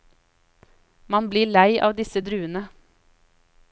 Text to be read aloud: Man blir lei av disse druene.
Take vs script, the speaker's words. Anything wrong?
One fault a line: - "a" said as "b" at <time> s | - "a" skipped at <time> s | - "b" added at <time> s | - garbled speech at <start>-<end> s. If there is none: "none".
none